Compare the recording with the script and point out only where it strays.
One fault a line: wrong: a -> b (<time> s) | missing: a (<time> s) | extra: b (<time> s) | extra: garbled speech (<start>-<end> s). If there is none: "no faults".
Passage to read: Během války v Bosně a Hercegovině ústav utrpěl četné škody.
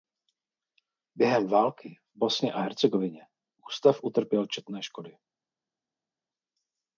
no faults